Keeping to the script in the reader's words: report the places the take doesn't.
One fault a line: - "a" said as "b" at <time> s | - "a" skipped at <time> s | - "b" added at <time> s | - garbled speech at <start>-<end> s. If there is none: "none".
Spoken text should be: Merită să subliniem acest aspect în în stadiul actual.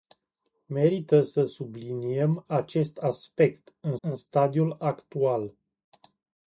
none